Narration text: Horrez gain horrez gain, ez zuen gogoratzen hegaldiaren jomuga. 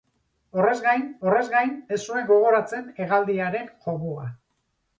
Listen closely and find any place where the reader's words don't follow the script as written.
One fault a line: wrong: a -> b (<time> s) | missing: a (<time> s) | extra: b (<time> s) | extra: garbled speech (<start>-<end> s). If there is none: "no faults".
no faults